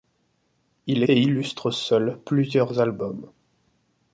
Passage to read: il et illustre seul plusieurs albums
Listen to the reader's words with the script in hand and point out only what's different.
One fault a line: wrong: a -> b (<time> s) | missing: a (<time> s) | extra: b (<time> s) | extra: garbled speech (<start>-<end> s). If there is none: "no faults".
no faults